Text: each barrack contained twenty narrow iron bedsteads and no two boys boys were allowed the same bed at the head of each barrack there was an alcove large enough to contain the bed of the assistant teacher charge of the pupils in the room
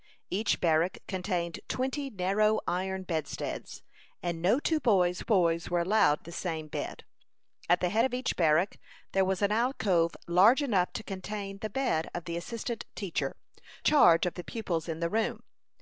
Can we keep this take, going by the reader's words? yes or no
yes